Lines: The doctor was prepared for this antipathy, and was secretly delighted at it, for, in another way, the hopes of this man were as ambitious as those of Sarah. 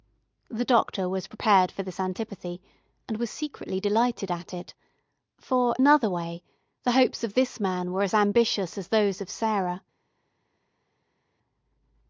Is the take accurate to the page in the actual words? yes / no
no